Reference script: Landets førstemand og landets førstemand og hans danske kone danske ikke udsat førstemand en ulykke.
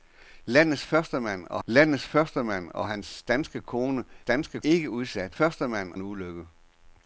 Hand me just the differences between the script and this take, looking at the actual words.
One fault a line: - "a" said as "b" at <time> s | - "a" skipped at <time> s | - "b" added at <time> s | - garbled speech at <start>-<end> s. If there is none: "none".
none